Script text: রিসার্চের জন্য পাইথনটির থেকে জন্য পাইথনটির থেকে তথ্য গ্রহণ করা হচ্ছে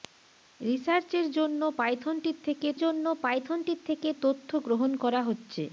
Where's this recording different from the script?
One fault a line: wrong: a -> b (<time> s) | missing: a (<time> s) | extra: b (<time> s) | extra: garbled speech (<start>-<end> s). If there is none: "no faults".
no faults